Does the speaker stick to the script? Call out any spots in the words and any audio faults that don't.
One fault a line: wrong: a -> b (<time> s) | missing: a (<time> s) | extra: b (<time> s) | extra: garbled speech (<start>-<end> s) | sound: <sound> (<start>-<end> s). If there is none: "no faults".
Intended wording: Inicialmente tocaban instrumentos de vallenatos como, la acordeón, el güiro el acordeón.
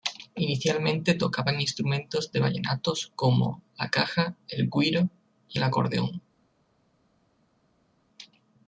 wrong: acordeón -> caja (3.9 s)
extra: y (5.5 s)